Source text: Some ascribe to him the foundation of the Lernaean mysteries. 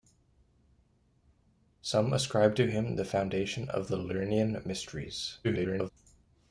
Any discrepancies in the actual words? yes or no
yes